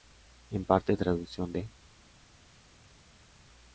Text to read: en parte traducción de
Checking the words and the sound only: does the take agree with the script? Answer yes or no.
yes